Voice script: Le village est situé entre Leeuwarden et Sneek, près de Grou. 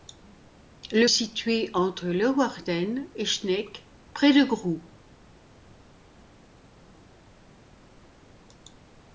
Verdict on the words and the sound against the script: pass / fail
fail